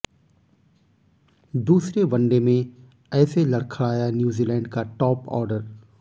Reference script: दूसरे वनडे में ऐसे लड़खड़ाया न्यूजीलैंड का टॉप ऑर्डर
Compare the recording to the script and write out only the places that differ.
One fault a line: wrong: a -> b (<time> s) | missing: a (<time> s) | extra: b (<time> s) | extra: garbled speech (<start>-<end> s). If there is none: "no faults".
no faults